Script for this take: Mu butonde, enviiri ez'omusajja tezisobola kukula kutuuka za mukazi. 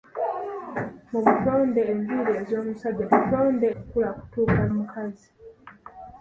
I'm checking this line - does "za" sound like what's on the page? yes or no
no